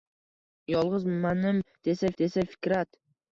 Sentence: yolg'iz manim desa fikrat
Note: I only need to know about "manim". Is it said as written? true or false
true